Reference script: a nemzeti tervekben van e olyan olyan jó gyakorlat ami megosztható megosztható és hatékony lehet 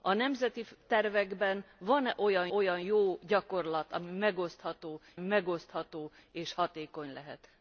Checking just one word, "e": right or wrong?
right